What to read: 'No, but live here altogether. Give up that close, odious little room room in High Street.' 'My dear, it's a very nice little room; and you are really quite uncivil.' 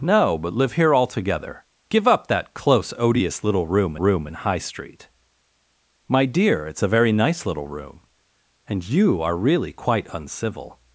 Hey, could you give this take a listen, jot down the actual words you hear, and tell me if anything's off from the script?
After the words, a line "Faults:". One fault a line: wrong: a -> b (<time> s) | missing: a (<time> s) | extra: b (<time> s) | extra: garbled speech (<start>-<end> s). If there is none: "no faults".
'No, but live here altogether. Give up that close, odious little room room in High Street.' 'My dear, it's a very nice little room; and you are really quite uncivil.'
Faults:
no faults